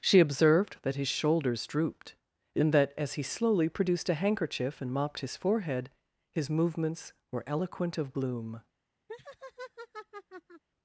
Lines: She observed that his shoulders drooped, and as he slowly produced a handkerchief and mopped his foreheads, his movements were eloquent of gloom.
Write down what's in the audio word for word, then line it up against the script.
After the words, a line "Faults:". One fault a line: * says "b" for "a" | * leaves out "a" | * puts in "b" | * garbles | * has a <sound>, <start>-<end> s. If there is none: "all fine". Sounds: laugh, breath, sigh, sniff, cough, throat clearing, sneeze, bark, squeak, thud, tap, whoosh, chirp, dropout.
She observed that his shoulders drooped, and that, as he slowly produced a handkerchief and mopped his forehead, his movements were eloquent of gloom.
Faults:
* puts in "that"
* says "forehead" for "foreheads"
* has a laugh, 9.1-10.6 s